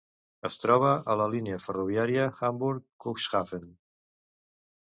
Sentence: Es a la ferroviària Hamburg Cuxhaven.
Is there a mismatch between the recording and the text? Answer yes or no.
yes